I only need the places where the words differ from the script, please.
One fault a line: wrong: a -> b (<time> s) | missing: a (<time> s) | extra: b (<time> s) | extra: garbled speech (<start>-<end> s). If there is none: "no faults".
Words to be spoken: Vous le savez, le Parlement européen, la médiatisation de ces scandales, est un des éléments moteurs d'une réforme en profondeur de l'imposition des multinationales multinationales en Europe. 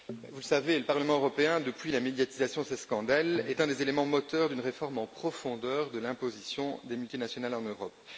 extra: depuis (1.6 s)
missing: multinationales (7.5 s)